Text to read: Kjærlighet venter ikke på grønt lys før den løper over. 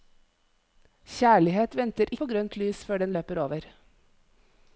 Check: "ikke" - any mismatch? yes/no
yes